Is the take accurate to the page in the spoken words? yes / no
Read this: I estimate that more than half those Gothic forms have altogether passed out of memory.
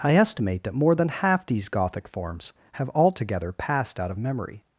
no